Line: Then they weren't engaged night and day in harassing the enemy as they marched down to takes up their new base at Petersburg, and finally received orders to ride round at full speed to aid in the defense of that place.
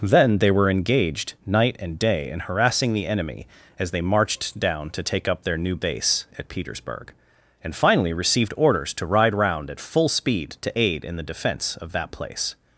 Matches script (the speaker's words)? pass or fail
fail